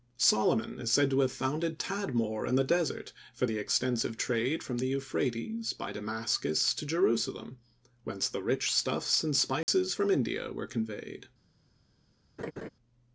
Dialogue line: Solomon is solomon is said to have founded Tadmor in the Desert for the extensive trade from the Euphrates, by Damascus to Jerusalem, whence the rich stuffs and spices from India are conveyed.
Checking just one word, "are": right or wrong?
wrong